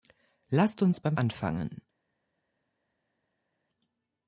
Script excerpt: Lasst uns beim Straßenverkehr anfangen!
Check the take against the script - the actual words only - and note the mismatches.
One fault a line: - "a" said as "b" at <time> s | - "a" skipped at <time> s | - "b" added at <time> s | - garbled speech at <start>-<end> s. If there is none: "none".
- "Straßenverkehr" skipped at 1.1 s